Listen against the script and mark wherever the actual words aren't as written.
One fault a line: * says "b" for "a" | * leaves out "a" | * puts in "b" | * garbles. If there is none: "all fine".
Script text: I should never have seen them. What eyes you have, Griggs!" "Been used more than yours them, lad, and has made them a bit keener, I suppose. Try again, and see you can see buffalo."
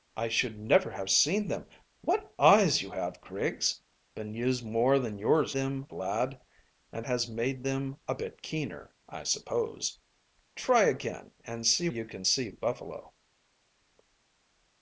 all fine